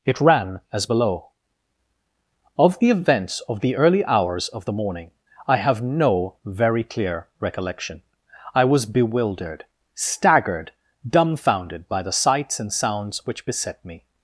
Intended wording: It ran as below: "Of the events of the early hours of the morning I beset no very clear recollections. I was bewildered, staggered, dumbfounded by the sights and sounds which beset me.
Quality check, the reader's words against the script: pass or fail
fail